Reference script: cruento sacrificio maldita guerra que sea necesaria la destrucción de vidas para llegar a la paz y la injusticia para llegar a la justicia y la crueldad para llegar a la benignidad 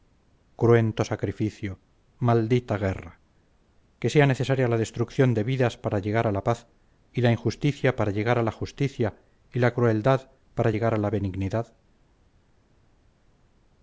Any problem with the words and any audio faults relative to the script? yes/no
no